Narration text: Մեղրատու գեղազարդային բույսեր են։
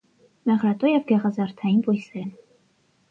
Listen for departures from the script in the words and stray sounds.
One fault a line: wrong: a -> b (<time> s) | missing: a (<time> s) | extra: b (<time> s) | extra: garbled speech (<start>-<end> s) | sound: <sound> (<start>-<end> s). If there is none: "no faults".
extra: և (0.9 s)